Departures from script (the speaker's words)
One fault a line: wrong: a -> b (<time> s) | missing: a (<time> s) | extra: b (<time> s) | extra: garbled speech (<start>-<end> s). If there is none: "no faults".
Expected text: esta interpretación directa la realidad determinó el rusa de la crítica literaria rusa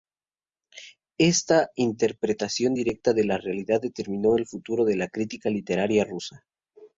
extra: de (3.1 s)
wrong: rusa -> futuro (4.5 s)